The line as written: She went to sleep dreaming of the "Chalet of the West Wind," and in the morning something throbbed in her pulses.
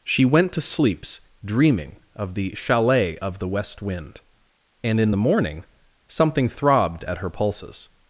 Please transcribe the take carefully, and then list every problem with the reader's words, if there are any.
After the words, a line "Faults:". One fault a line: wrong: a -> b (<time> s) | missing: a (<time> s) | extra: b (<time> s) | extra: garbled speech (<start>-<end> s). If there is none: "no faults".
She went to sleeps dreaming of the "Chalet of the West Wind," and in the morning something throbbed at her pulses.
Faults:
wrong: sleep -> sleeps (0.6 s)
wrong: in -> at (7.0 s)